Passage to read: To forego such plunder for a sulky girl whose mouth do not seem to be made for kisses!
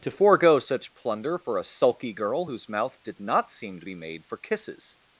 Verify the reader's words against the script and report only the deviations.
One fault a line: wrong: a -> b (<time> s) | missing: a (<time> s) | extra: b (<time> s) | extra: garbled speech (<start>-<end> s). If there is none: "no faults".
wrong: do -> did (3.0 s)